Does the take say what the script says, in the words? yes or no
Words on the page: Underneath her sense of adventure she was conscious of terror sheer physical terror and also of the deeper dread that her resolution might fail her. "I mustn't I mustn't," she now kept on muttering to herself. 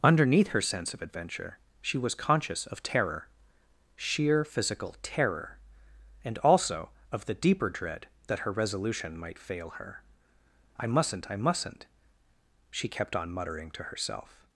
no